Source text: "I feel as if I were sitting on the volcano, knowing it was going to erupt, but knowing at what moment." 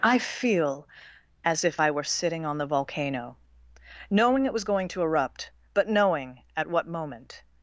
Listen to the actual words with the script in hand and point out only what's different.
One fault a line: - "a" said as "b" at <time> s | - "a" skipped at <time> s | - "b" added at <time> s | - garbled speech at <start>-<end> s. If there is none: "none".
none